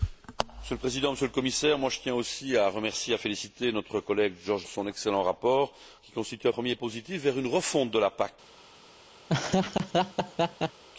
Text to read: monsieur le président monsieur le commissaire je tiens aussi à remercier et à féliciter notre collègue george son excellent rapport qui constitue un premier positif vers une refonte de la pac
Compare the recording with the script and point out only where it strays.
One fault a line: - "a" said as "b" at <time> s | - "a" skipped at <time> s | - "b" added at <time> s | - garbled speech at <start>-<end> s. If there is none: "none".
none